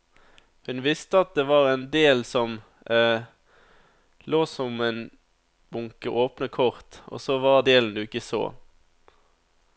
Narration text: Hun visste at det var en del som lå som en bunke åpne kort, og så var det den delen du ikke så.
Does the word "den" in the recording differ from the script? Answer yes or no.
yes